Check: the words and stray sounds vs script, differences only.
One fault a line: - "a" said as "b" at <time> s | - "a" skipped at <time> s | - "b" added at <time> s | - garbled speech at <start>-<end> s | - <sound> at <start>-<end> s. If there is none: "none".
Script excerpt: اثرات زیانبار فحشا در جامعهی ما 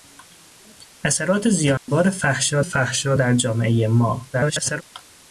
- dropout at 1.8-1.9 s
- "فحشا" added at 2.6 s
- garbled speech at 4.3-4.8 s